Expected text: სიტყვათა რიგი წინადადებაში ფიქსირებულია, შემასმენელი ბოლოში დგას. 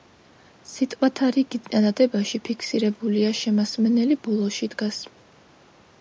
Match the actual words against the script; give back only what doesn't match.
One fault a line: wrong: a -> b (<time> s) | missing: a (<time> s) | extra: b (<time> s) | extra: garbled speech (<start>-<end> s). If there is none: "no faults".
no faults